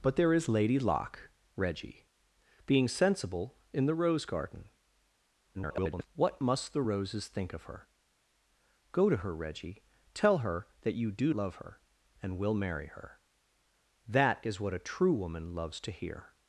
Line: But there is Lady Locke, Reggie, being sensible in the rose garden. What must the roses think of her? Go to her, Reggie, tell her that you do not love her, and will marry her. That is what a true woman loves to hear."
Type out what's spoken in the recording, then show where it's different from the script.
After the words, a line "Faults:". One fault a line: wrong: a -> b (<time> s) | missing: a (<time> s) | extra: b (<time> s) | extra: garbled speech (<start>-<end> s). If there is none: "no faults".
But there is Lady Locke, Reggie, being sensible in the rose garden. [garbled] What must the roses think of her? Go to her, Reggie, tell her that you do love her, and will marry her. That is what a true woman loves to hear."
Faults:
extra: garbled speech (5.5-6.1 s)
missing: not (11.3 s)